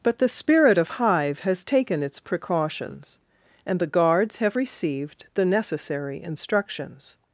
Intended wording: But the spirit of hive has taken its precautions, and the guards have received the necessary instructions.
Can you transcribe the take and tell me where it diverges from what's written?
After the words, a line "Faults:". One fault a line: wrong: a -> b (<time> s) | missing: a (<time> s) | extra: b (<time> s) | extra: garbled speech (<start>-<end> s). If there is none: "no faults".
But the spirit of hive has taken its precautions, and the guards have received the necessary instructions.
Faults:
no faults